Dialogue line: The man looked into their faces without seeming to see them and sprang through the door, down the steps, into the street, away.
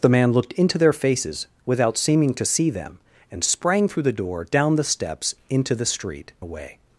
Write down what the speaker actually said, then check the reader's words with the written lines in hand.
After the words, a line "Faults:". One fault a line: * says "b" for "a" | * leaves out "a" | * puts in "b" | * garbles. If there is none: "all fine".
The man looked into their faces without seeming to see them and sprang through the door, down the steps, into the street, away.
Faults:
all fine